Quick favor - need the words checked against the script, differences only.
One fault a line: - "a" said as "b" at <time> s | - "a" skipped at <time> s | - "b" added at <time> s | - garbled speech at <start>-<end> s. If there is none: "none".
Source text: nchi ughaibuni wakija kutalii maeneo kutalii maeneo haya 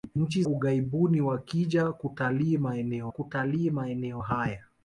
none